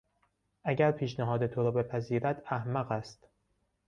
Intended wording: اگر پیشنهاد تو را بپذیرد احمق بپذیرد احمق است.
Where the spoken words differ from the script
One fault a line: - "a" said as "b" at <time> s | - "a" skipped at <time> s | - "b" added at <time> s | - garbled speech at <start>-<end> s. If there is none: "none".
- "بپذیرد احمق" skipped at 2.9 s